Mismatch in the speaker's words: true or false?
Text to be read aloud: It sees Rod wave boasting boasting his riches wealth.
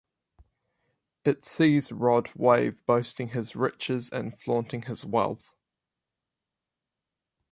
true